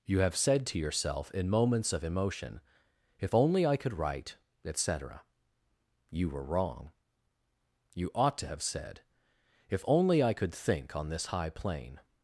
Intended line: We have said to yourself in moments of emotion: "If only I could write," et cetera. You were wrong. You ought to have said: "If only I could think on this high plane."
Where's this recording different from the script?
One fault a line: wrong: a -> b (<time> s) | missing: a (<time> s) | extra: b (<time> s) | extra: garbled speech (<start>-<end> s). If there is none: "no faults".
wrong: We -> You (0.1 s)